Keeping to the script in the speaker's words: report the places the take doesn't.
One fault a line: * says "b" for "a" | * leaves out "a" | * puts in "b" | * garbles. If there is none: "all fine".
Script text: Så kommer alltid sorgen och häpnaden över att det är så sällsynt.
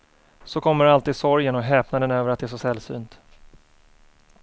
all fine